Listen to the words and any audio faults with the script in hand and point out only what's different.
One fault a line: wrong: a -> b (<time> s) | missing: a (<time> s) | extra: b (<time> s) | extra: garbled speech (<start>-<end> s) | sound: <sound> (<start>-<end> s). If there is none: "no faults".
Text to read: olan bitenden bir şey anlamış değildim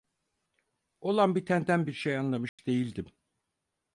sound: dropout (2.5-2.6 s)